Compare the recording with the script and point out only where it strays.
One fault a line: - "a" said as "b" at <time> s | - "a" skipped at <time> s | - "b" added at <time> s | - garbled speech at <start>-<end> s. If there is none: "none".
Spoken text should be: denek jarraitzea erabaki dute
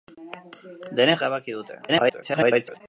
- "jarraitzea" skipped at 1.2 s
- garbled speech at 1.9-2.8 s